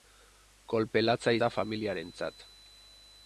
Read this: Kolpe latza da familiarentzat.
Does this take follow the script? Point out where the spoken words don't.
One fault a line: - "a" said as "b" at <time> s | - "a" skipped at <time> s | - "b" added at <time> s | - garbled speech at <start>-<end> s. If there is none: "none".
none